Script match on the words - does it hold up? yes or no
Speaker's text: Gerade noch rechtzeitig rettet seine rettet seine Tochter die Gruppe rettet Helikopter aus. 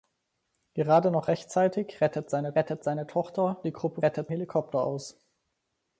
yes